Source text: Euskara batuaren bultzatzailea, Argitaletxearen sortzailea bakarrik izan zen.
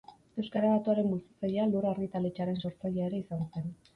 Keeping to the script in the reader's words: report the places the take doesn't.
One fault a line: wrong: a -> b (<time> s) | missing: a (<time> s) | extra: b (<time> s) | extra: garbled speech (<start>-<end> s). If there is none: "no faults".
extra: Lur (1.8 s)
wrong: bakarrik -> ere (3.1 s)